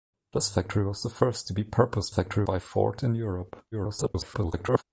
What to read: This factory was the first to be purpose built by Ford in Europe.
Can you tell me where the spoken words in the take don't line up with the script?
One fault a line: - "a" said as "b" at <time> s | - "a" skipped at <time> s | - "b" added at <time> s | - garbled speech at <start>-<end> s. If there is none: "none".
- "built" said as "factory" at 2.1 s
- garbled speech at 3.7-4.8 s